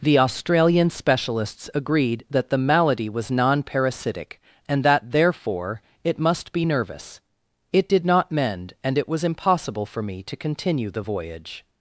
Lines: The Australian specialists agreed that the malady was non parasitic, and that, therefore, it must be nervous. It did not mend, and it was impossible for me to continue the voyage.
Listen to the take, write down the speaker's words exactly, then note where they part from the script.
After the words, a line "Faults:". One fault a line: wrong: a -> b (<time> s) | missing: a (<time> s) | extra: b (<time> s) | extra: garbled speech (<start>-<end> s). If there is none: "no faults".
The Australian specialists agreed that the malady was non parasitic, and that, therefore, it must be nervous. It did not mend, and it was impossible for me to continue the voyage.
Faults:
no faults